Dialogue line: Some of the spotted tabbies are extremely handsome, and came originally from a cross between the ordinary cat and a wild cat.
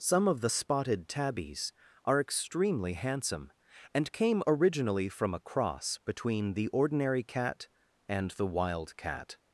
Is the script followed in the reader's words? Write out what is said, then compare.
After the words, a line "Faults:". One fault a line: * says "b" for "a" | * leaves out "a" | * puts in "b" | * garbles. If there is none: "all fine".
Some of the spotted tabbies are extremely handsome, and came originally from a cross between the ordinary cat and the wild cat.
Faults:
* says "the" for "a"